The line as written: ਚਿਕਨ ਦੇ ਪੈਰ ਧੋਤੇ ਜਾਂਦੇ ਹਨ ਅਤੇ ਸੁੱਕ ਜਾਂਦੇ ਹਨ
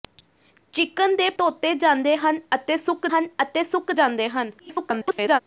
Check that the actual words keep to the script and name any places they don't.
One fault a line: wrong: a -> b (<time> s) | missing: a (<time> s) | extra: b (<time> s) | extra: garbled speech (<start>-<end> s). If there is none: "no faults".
missing: ਪੈਰ (1.3 s)
extra: ਹਨ ਅਤੇ ਸੁੱਕ (3.1 s)
extra: garbled speech (4.6-5.4 s)